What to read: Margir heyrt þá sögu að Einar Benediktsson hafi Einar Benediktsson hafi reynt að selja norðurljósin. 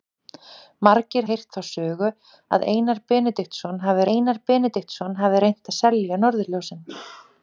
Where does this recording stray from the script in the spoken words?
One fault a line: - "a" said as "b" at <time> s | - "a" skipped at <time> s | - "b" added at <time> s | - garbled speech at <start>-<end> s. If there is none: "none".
none